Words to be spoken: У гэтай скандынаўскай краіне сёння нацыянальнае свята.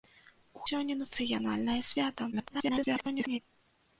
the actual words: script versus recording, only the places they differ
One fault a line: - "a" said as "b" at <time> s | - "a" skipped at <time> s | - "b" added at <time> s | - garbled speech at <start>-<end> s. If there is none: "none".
- "гэтай скандынаўскай краіне" skipped at 0.6 s
- garbled speech at 2.3-3.4 s